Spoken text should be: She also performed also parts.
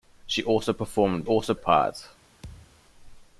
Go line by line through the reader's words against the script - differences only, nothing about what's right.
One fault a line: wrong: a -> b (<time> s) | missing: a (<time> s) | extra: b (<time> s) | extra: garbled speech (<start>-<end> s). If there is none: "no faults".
no faults